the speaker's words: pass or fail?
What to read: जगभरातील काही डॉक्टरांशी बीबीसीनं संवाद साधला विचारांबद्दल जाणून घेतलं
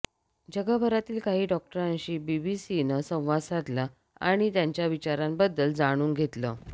fail